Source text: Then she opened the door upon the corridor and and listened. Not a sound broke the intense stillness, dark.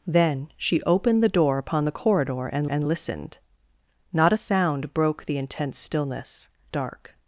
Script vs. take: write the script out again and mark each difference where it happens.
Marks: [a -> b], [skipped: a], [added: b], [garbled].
Then she opened the door upon the corridor and and listened. Not a sound broke the intense stillness, dark.